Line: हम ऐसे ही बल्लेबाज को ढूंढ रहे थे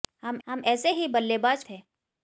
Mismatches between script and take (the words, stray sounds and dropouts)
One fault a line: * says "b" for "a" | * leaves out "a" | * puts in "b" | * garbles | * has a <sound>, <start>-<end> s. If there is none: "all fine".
* puts in "हम"
* leaves out "को ढूंढ रहे"